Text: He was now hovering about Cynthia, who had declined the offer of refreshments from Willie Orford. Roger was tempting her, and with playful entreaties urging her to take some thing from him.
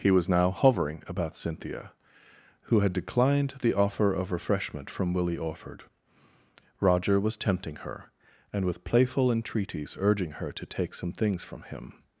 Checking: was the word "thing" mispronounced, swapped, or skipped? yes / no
yes